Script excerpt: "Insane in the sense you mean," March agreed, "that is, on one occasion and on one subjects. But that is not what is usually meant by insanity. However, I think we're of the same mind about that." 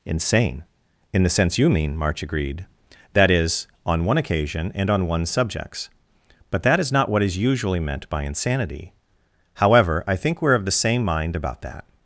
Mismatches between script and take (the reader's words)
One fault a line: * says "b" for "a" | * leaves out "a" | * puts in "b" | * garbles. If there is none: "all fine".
all fine